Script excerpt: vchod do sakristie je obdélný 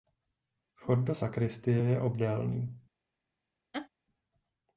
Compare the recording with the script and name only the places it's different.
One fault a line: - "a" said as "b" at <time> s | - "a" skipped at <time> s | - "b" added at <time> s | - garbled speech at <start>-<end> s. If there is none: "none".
none